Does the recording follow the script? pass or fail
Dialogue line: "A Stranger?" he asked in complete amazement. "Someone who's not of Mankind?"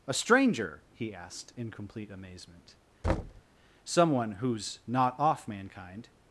fail